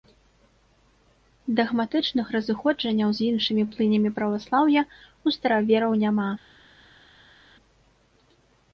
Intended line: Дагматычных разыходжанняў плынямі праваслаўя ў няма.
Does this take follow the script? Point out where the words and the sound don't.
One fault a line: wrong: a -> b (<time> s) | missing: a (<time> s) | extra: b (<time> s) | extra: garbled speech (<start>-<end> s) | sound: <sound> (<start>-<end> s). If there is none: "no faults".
extra: з іншымі (3.2 s)
extra: старавераў (5.4 s)